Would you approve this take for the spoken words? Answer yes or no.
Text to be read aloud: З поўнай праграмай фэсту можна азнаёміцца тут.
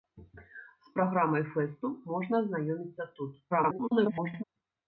no